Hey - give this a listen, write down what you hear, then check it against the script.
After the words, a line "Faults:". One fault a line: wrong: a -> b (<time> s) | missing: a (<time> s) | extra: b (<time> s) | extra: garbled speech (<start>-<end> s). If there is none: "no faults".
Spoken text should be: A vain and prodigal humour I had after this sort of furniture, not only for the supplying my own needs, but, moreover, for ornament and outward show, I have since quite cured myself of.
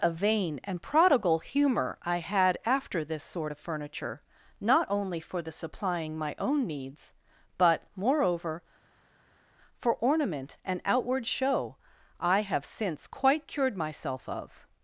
A vain and prodigal humour I had after this sort of furniture, not only for the supplying my own needs, but, moreover, for ornament and outward show, I have since quite cured myself of.
Faults:
no faults